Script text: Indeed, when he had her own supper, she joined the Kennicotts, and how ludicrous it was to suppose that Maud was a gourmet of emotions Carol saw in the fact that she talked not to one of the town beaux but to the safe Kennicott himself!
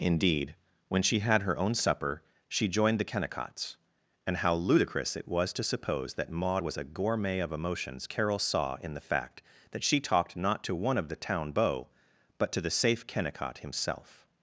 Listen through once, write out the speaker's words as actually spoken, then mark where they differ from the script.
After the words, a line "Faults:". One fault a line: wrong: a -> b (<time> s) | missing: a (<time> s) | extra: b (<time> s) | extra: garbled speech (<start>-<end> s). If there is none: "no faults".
Indeed, when she had her own supper, she joined the Kennicotts, and how ludicrous it was to suppose that Maud was a gourmet of emotions Carol saw in the fact that she talked not to one of the town beaux but to the safe Kennicott himself!
Faults:
wrong: he -> she (1.0 s)